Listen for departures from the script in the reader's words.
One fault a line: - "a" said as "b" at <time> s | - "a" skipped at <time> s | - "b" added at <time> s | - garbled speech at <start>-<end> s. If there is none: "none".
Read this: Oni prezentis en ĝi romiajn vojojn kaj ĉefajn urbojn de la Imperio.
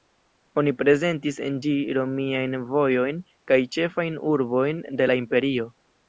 none